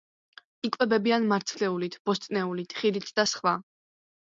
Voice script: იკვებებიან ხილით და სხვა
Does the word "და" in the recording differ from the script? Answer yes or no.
no